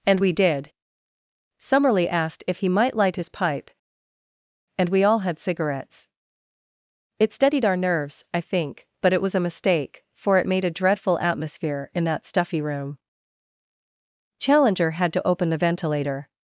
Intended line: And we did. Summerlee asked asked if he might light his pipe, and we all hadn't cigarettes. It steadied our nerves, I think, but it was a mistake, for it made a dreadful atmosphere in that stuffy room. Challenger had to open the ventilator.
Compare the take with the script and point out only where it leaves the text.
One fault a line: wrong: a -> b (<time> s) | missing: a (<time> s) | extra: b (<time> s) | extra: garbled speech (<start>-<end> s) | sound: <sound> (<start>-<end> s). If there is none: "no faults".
missing: asked (2.4 s)
wrong: hadn't -> had (5.2 s)